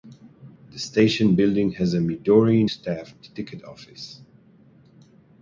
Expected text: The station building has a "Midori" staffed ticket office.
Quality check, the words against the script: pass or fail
pass